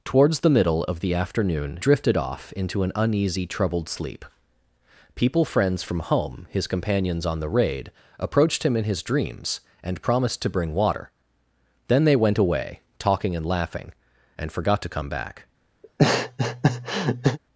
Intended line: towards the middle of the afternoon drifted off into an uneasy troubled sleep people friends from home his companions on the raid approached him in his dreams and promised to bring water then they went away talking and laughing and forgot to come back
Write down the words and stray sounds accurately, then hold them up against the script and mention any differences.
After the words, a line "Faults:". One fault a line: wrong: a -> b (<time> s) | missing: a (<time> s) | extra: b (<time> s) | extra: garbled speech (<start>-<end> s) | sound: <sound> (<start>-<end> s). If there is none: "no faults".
towards the middle of the afternoon drifted off into an uneasy troubled sleep people friends from home his companions on the raid approached him in his dreams and promised to bring water then they went away talking and laughing and forgot to come back
Faults:
sound: laugh (15.8-17.4 s)